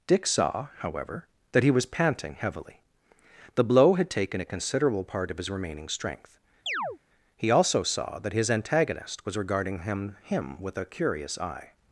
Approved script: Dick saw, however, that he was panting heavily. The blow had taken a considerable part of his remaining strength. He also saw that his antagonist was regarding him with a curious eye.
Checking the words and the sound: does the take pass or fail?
fail